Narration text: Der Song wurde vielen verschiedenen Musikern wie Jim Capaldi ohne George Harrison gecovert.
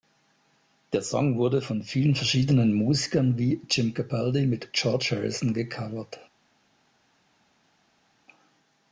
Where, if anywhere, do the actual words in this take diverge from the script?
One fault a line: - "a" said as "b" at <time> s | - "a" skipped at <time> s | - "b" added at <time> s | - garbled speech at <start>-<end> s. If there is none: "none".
- "von" added at 1.6 s
- "ohne" said as "mit" at 4.5 s